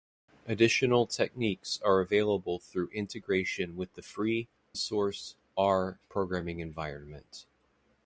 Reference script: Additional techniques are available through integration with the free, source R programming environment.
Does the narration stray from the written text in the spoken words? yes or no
no